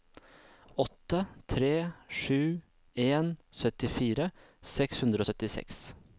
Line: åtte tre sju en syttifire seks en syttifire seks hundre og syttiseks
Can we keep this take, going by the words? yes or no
no